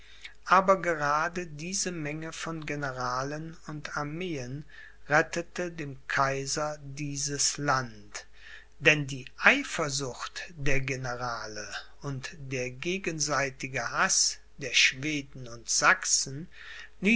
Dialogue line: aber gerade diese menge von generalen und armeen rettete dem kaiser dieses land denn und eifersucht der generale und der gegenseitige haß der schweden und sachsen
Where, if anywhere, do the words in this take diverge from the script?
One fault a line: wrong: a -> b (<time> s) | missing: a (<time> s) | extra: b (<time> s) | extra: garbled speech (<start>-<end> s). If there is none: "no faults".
wrong: und -> die (9.1 s)